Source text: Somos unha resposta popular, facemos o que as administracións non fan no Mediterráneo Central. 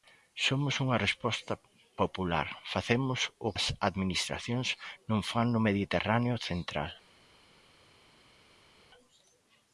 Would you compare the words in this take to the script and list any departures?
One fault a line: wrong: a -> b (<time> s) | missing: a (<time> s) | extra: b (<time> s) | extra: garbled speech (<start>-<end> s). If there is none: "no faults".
missing: que (3.5 s)